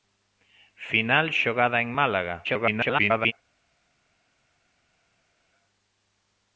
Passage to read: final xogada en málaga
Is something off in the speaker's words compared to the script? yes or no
yes